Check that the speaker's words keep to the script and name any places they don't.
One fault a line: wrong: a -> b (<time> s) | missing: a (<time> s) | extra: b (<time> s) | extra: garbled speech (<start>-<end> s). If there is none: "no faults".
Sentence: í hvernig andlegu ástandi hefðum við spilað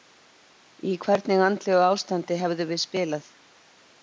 no faults